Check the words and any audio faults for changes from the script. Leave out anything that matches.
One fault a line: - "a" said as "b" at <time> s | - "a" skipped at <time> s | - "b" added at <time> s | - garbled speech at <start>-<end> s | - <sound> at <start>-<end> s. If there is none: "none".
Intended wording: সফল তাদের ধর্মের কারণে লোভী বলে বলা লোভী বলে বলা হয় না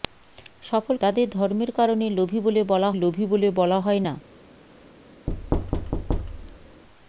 - thud at 5.3-6.8 s